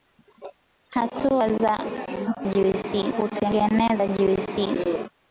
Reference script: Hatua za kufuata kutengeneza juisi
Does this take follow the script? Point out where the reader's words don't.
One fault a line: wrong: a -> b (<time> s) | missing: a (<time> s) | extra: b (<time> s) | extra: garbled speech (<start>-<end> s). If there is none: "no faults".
wrong: kufuata -> juisi (2.4 s)